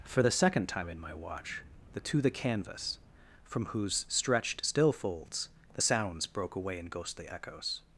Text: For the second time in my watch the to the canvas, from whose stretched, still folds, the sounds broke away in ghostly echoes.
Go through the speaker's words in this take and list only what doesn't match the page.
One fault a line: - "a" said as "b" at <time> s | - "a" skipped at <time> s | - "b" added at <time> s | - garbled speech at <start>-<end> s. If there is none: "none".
none